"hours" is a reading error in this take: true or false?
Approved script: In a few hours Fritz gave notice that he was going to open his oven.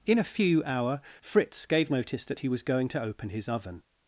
true